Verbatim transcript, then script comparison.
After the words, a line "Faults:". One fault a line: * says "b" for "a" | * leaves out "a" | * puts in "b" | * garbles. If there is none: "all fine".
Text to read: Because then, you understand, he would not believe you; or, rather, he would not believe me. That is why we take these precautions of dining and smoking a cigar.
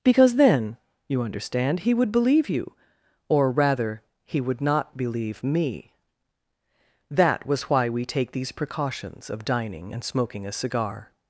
Because then, you understand, he would believe you; or, rather, he would not believe me. That was why we take these precautions of dining and smoking a cigar.
Faults:
* leaves out "not"
* says "was" for "is"